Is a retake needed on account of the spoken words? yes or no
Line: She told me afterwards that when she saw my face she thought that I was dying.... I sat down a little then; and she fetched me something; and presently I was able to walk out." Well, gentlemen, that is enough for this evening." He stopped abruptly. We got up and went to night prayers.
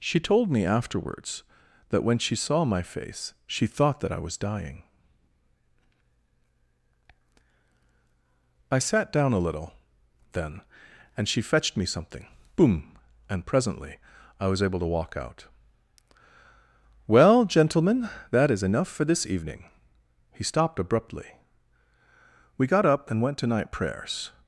yes